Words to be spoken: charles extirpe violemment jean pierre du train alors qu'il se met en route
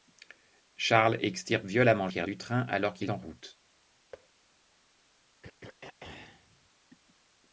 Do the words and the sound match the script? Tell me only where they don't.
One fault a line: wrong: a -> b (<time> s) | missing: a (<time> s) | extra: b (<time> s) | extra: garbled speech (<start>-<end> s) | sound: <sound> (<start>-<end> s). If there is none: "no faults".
missing: jean (2.1 s)
missing: se met (3.1 s)
sound: thud (4.1-4.3 s)
sound: throat clearing (5.4-6.7 s)